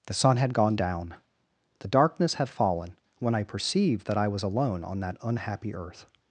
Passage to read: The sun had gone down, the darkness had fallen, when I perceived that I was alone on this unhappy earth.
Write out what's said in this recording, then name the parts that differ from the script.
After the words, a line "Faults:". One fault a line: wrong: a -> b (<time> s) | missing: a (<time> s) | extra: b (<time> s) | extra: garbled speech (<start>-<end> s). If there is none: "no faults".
The sun had gone down, the darkness had fallen, when I perceived that I was alone on that unhappy earth.
Faults:
wrong: this -> that (5.0 s)